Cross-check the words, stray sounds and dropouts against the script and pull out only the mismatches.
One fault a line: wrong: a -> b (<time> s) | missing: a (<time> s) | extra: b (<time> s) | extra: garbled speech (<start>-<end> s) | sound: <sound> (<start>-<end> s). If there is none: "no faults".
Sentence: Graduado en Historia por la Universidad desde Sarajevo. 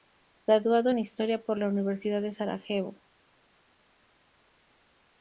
wrong: desde -> de (2.2 s)